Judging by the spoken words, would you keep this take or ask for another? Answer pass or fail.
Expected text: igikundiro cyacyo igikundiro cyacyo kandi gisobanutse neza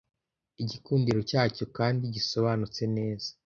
fail